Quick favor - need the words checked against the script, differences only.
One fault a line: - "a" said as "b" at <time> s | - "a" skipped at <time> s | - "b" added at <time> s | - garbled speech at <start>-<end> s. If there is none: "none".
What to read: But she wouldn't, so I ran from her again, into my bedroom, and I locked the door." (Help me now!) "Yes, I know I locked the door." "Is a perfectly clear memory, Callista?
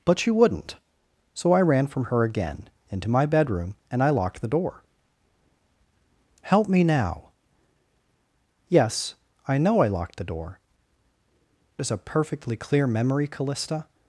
none